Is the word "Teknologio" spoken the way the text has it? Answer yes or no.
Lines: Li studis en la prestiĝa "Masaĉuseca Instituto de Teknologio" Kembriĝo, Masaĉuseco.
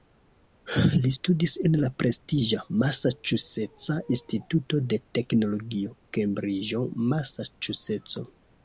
yes